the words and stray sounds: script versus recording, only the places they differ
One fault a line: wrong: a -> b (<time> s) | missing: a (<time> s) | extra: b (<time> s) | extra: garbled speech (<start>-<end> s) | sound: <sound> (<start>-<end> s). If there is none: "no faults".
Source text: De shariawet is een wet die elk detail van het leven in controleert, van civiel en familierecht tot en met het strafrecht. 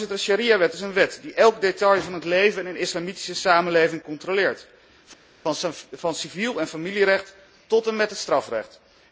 extra: een islamitische samenleving (2.7 s)